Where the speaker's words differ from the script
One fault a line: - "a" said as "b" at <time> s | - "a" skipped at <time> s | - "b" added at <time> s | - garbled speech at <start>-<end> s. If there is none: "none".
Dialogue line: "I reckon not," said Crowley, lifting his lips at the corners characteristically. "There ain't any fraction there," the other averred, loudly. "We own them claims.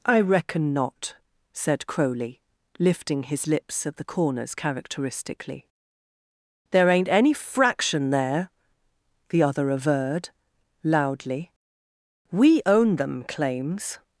none